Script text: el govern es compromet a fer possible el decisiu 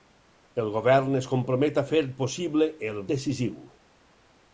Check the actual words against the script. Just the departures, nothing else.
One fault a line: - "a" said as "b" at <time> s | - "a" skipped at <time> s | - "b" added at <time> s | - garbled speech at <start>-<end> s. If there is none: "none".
none